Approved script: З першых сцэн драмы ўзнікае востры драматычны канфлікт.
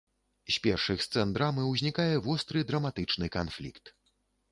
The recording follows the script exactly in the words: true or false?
true